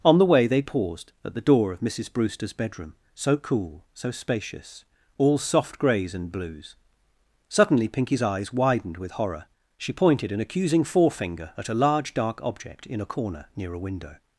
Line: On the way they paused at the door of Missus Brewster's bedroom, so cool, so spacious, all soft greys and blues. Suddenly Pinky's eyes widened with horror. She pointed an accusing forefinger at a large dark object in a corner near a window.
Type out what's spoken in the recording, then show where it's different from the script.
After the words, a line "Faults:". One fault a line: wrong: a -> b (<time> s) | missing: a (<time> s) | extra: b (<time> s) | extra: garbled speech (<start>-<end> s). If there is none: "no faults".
On the way they paused at the door of Missus Brewster's bedroom, so cool, so spacious, all soft greys and blues. Suddenly Pinky's eyes widened with horror. She pointed an accusing forefinger at a large dark object in a corner near a window.
Faults:
no faults